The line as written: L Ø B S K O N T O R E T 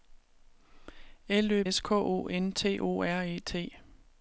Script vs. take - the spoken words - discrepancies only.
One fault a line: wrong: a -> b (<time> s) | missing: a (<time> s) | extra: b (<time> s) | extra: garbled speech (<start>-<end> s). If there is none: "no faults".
missing: B (1.6 s)